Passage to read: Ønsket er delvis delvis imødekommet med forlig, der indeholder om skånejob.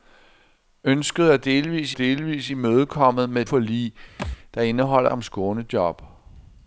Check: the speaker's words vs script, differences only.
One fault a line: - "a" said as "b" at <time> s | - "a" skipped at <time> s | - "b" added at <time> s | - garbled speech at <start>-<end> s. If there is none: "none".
none